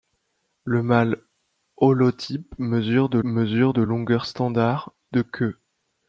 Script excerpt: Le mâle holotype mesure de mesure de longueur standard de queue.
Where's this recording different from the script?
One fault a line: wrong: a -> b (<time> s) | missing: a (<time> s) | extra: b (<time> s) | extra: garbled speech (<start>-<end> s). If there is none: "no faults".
no faults